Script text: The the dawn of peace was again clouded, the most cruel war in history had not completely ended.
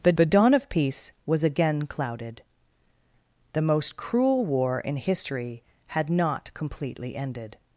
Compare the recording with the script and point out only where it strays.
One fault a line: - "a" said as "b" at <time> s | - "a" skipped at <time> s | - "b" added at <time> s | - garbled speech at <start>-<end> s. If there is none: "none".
none